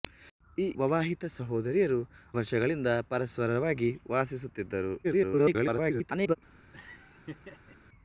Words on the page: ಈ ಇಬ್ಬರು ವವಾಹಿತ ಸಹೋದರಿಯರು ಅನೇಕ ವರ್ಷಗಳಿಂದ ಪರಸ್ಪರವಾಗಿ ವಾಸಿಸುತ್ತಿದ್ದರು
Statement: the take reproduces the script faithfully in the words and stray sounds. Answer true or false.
false